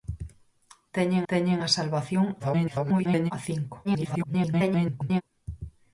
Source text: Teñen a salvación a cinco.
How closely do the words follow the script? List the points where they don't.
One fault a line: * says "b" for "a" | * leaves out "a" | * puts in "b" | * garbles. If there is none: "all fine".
* puts in "teñen"
* garbles
* garbles